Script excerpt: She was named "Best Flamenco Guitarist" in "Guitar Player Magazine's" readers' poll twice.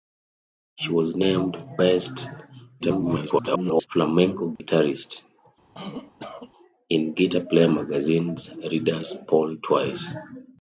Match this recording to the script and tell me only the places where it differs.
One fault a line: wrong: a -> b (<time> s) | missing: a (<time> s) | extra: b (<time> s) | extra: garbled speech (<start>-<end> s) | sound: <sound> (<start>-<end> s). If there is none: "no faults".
extra: garbled speech (2.8-3.9 s)
sound: dropout (4.6-4.6 s)
sound: cough (5.7-6.5 s)